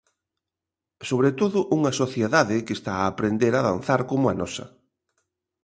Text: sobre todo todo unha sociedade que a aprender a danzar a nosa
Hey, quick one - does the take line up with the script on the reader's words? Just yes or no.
no